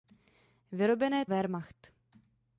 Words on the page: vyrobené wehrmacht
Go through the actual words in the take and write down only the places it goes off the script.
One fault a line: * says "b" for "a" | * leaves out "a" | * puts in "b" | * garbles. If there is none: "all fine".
all fine